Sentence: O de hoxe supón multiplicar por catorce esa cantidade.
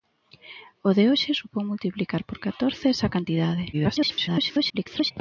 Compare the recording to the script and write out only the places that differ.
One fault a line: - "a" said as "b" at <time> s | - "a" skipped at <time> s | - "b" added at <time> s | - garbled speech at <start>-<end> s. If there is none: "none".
- garbled speech at 3.7-5.1 s